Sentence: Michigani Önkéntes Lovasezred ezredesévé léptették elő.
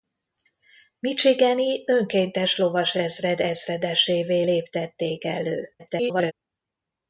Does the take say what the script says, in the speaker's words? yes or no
no